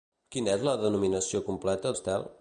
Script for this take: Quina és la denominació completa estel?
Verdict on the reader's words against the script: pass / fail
pass